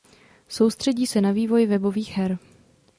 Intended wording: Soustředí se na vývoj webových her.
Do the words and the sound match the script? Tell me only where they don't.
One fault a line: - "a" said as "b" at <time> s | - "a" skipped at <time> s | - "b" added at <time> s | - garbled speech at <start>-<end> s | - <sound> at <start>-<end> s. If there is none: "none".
none